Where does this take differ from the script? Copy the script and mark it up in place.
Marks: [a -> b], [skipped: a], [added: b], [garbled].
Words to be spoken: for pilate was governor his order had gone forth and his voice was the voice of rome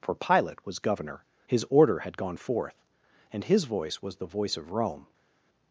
for pilate was governor his order had gone forth and his voice was the voice of rome